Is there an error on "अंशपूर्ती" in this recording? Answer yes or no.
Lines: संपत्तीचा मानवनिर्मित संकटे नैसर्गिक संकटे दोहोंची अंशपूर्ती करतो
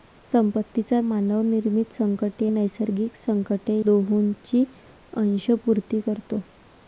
no